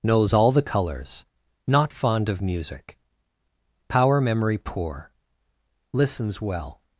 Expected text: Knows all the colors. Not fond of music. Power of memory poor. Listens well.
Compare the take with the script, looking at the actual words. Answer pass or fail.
fail